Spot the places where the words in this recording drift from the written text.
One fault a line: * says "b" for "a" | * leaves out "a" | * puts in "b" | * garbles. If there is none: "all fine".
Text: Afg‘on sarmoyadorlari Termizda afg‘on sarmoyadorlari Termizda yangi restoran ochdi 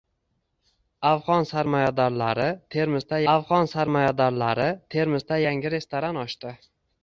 all fine